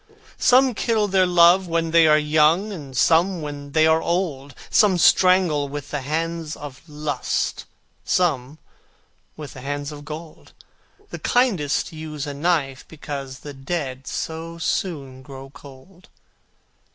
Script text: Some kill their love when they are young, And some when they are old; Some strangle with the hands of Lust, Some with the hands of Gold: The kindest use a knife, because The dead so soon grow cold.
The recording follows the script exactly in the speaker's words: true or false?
true